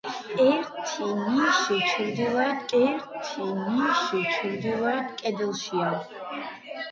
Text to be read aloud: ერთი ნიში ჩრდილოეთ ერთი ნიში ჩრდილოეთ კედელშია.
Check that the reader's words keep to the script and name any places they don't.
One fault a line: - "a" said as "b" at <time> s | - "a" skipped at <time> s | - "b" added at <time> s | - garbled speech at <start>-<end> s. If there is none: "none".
none